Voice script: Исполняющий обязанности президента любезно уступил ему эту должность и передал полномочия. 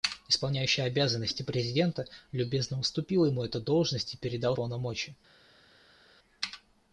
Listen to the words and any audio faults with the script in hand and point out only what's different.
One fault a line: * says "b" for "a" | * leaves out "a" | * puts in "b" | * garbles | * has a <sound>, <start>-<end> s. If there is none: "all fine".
all fine